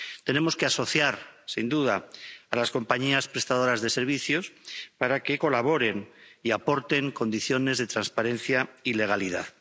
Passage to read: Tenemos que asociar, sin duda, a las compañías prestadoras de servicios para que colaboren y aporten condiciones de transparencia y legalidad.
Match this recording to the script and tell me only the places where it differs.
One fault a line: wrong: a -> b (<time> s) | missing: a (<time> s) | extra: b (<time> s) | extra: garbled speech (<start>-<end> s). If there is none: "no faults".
no faults